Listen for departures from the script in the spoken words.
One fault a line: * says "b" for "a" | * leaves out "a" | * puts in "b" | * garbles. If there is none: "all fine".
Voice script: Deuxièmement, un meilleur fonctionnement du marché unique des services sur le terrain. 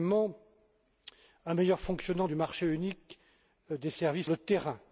* leaves out "sur"